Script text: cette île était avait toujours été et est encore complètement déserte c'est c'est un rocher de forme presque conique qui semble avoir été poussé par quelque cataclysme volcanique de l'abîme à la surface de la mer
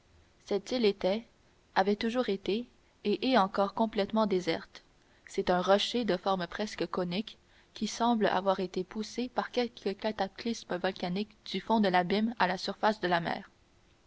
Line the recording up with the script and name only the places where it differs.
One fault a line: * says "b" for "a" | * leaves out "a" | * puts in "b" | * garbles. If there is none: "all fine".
* leaves out "c'est"
* puts in "du fond"